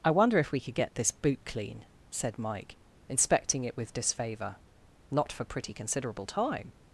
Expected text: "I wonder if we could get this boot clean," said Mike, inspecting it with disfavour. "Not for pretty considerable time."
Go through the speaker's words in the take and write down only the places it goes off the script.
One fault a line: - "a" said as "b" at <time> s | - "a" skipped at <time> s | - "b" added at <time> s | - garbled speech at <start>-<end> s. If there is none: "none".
none